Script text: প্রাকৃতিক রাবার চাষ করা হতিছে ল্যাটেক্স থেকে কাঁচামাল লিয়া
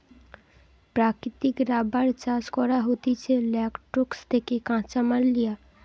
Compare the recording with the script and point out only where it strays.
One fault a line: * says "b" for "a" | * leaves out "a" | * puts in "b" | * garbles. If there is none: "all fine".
all fine